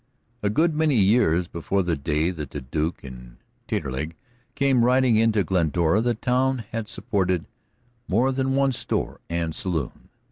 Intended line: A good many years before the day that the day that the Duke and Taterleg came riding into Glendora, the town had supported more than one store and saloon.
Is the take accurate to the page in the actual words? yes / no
no